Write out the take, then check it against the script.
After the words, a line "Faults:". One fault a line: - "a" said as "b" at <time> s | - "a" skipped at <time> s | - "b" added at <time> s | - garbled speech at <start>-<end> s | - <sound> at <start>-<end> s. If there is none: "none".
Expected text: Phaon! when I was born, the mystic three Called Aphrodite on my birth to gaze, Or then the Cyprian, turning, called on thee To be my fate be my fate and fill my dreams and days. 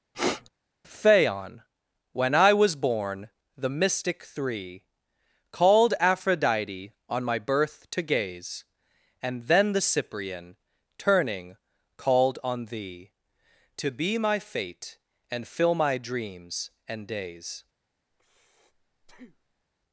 Phaon! when I was born, the mystic three Called Aphrodite on my birth to gaze, And then the Cyprian, turning, called on thee To be my fate and fill my dreams and days.
Faults:
- sniff at 0.1-0.5 s
- "Or" said as "And" at 9.2 s
- "be my fate" skipped at 15.0 s
- breath at 18.1-19.6 s